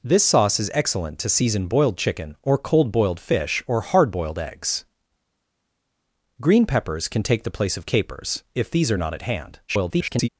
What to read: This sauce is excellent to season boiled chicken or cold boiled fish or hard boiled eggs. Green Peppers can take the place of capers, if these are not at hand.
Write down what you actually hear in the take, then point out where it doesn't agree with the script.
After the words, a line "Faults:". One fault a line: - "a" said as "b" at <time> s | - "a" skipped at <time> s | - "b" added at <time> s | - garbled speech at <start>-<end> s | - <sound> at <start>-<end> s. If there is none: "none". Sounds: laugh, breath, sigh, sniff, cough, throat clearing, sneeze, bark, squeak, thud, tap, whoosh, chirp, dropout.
This sauce is excellent to season boiled chicken or cold boiled fish or hard boiled eggs. Green Peppers can take the place of capers, if these are not at hand. [garbled]
Faults:
- garbled speech at 9.7-10.3 s